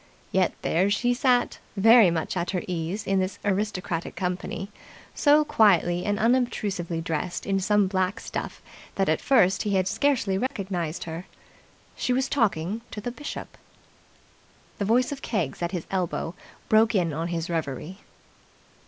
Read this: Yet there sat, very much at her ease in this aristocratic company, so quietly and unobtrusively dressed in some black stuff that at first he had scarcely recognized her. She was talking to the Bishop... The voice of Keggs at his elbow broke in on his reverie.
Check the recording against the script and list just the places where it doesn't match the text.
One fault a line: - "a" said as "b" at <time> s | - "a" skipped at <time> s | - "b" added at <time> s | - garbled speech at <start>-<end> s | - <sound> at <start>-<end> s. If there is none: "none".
- "she" added at 0.9 s
- dropout at 10.5-10.5 s